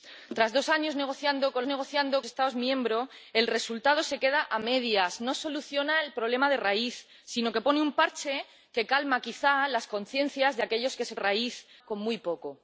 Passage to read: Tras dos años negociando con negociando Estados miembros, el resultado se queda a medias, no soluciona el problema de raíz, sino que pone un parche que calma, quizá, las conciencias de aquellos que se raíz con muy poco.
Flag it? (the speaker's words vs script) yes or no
no